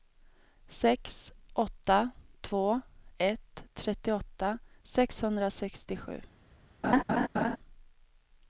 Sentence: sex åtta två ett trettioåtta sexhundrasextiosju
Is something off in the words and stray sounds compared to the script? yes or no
yes